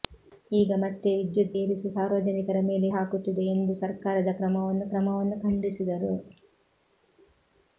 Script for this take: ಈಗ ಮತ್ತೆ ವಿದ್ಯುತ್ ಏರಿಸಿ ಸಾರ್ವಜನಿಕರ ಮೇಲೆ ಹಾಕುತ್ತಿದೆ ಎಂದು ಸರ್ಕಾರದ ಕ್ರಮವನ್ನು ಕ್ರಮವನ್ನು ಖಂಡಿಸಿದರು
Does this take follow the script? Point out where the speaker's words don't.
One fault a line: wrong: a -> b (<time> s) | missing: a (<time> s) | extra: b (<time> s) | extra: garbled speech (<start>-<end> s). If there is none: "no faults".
no faults